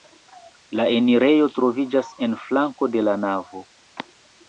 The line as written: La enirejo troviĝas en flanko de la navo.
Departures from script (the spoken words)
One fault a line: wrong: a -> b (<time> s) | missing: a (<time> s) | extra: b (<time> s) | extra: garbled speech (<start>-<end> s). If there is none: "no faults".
no faults